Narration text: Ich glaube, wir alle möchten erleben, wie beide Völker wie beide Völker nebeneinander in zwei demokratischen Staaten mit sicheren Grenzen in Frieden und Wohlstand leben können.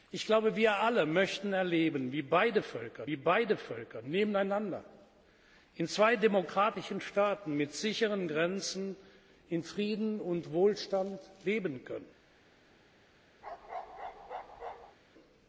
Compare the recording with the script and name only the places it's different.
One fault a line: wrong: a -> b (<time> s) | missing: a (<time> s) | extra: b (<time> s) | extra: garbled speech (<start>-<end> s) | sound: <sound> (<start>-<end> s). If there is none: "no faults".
sound: bark (13.4-15.0 s)